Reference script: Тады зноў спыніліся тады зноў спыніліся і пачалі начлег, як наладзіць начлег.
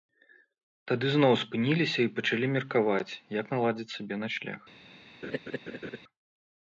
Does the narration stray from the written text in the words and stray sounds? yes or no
yes